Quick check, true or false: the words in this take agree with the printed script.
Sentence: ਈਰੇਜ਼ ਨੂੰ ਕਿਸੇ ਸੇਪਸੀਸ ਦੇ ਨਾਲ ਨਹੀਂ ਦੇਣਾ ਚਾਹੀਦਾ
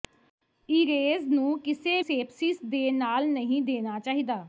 true